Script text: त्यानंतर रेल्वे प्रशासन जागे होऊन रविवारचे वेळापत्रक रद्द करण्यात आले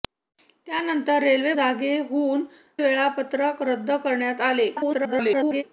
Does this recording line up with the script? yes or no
no